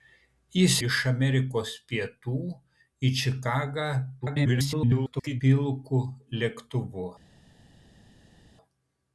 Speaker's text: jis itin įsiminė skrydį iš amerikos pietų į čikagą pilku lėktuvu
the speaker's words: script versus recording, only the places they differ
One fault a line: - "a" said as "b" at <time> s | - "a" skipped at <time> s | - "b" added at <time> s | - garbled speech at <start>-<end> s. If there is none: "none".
- "itin įsiminė skrydį" skipped at 0.8 s
- garbled speech at 4.2-5.4 s